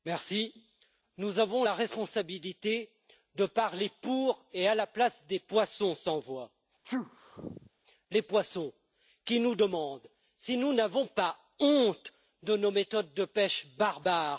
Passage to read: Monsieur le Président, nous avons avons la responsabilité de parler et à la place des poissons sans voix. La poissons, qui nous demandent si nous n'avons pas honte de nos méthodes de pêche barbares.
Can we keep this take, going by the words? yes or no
no